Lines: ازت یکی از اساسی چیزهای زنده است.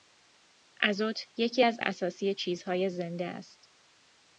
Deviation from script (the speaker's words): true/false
false